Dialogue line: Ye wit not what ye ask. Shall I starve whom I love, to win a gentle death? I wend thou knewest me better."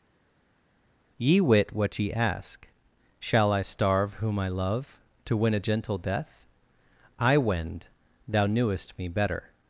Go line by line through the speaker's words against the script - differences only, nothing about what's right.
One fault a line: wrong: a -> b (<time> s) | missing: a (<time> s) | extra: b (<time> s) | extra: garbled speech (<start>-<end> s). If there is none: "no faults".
missing: not (1.7 s)